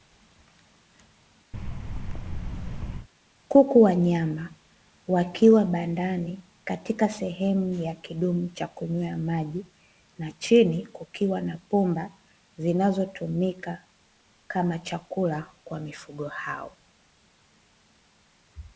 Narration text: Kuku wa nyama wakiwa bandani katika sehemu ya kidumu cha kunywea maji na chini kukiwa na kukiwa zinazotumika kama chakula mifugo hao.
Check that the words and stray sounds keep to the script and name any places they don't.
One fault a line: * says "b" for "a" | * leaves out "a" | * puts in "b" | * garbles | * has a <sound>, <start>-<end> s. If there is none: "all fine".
* has a thud, 1.5-3.1 s
* says "pumba" for "kukiwa"
* puts in "kwa"